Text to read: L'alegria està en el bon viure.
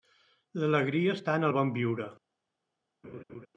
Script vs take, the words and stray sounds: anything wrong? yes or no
yes